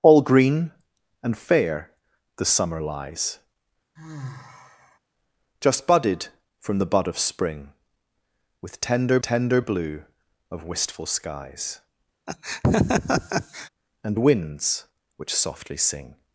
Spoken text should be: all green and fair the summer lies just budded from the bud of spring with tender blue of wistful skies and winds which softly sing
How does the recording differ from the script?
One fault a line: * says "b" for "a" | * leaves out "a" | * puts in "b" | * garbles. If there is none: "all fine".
* puts in "tender"